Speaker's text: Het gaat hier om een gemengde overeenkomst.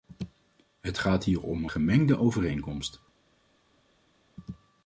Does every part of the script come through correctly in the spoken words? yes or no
yes